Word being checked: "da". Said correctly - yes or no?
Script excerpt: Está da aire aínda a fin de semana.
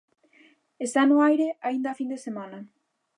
no